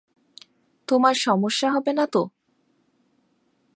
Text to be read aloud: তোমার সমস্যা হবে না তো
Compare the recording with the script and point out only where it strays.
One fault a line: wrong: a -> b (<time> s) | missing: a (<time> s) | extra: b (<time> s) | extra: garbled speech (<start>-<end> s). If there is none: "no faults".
no faults